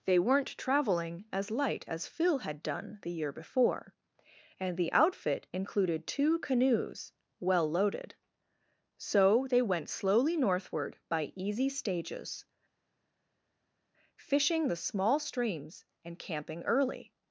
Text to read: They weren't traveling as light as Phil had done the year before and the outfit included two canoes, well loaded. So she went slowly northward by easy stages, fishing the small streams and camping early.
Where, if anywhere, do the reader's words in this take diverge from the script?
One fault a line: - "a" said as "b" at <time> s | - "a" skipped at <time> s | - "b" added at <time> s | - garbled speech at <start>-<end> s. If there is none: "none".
- "she" said as "they" at 9.5 s